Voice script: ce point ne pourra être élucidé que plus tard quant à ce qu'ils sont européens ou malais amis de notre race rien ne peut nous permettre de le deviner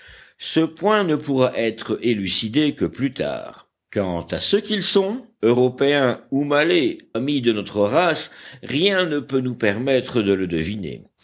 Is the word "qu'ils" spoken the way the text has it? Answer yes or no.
yes